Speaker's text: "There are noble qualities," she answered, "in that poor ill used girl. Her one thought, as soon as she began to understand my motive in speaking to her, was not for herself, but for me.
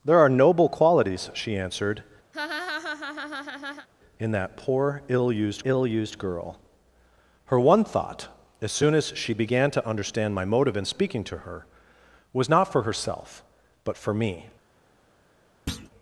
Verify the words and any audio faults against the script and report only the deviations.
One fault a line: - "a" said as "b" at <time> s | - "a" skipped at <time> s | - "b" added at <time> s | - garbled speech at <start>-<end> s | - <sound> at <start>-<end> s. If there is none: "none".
- laugh at 2.3-3.9 s
- "ill used" added at 5.6 s
- thud at 15.7-15.9 s